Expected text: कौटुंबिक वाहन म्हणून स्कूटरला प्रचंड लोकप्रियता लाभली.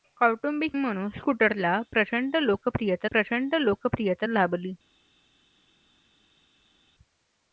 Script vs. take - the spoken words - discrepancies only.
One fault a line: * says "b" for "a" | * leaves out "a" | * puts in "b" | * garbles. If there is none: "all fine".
* leaves out "वाहन"
* puts in "प्रचंड लोकप्रियता"